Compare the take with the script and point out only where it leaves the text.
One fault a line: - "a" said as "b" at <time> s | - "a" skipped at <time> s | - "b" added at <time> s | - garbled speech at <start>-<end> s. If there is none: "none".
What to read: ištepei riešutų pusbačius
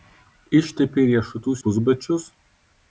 none